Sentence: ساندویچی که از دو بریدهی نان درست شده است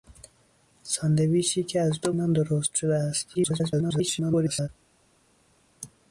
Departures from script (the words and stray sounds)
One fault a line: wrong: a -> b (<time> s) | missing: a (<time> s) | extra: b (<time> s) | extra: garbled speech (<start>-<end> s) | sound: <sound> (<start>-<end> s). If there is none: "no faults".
missing: بریدهی (2.1 s)
extra: garbled speech (3.3-4.7 s)